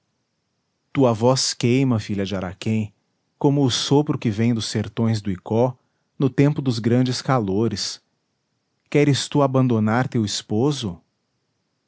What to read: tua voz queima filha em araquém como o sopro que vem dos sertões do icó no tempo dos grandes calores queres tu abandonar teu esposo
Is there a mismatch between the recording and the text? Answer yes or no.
yes